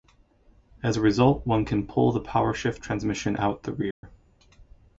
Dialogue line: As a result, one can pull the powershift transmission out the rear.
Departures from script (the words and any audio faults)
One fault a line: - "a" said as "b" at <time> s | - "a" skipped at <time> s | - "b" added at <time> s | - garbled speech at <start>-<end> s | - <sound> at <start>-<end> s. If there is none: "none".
- dropout at 3.9-4.0 s